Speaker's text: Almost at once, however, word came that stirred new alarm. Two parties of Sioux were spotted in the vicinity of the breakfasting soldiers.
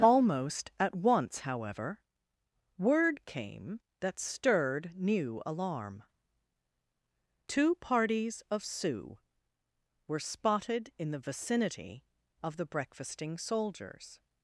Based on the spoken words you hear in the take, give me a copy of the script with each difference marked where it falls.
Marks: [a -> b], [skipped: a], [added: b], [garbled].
Almost at once, however, word came that stirred new alarm. Two parties of Sioux were spotted in the vicinity of the breakfasting soldiers.